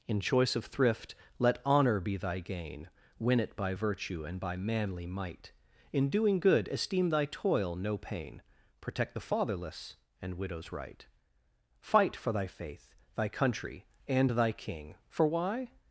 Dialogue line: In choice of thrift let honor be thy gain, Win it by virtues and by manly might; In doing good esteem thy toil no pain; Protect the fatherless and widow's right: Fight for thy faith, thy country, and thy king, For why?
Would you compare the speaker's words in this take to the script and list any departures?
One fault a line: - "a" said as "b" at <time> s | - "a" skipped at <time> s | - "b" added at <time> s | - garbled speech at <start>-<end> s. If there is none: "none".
- "virtues" said as "virtue" at 3.7 s